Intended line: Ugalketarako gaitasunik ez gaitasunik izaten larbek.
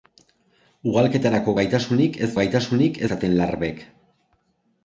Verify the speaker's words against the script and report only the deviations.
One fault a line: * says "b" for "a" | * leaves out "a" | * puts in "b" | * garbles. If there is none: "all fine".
all fine